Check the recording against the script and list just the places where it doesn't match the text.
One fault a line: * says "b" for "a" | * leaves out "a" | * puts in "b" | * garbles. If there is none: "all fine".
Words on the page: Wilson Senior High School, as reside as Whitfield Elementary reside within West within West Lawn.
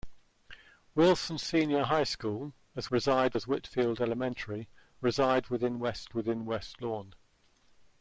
all fine